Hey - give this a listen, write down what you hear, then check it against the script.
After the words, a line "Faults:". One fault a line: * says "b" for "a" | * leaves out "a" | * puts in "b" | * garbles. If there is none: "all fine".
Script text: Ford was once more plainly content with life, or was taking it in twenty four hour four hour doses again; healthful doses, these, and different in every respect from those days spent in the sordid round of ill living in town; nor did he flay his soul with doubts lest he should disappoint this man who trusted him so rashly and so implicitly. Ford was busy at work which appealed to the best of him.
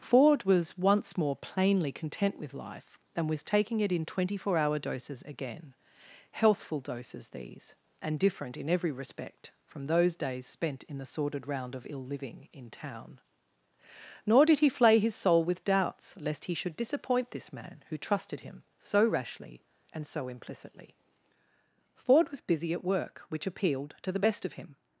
Ford was once more plainly content with life, and was taking it in twenty four hour doses again; healthful doses, these, and different in every respect from those days spent in the sordid round of ill living in town; nor did he flay his soul with doubts lest he should disappoint this man who trusted him so rashly and so implicitly. Ford was busy at work which appealed to the best of him.
Faults:
* says "and" for "or"
* leaves out "four hour"